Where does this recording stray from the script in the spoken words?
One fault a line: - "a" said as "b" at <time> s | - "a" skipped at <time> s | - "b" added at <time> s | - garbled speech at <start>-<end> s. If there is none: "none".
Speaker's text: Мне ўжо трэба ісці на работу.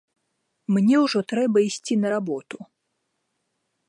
none